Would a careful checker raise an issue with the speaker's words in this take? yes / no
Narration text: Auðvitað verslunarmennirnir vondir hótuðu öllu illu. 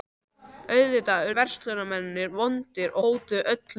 no